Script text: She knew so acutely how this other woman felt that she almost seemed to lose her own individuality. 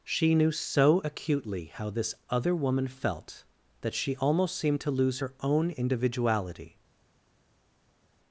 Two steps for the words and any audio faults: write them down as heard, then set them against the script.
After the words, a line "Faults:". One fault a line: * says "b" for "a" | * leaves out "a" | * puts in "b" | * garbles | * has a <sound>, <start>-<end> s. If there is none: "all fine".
She knew so acutely how this other woman felt that she almost seemed to lose her own individuality.
Faults:
all fine